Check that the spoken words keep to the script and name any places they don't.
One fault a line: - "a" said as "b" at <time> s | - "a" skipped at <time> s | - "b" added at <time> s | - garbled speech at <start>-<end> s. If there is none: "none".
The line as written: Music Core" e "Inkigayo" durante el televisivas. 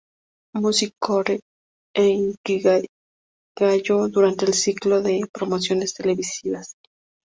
- "ciclo de promociones" added at 4.5 s